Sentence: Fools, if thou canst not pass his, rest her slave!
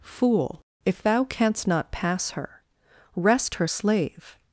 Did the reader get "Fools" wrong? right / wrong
wrong